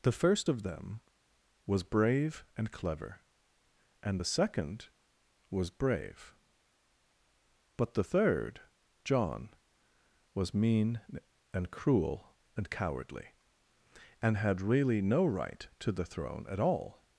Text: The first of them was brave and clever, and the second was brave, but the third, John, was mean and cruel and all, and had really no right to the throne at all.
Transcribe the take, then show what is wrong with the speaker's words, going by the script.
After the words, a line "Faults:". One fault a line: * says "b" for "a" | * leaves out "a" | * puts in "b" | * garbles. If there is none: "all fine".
The first of them was brave and clever, and the second was brave, but the third, John, was mean and cruel and cowardly, and had really no right to the throne at all.
Faults:
* says "cowardly" for "all"